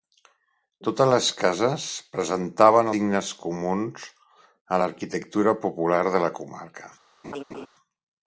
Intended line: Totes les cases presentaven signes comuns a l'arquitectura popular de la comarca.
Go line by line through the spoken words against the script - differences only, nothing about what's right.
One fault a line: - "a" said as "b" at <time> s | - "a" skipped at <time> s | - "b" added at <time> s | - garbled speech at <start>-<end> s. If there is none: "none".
none